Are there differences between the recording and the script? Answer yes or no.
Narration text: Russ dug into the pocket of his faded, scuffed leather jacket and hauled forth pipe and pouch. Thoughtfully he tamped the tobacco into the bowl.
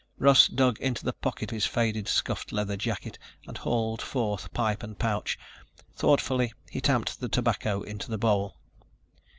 yes